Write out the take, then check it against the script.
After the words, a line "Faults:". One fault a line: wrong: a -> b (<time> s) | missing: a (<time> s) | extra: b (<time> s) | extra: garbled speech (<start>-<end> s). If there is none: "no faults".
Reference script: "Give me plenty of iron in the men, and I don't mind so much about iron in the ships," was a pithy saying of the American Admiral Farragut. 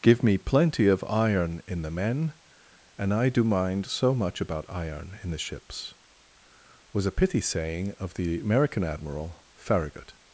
"Give me plenty of iron in the men, and I do mind so much about iron in the ships," was a pithy saying of the American Admiral Farragut.
Faults:
wrong: don't -> do (3.3 s)